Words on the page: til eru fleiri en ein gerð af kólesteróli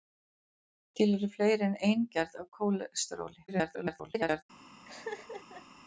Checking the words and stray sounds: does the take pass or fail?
fail